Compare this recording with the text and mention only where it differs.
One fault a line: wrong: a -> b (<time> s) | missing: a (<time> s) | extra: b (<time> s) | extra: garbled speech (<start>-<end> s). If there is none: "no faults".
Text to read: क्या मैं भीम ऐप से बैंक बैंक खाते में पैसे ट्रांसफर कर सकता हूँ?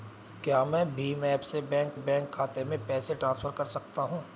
no faults